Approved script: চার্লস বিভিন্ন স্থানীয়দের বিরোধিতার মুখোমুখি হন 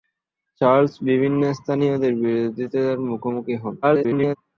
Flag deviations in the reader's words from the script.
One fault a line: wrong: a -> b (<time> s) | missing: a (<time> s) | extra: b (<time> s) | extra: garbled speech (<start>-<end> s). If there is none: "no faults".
extra: garbled speech (3.8-4.4 s)